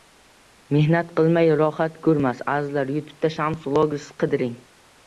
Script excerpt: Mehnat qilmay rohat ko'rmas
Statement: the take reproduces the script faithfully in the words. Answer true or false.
true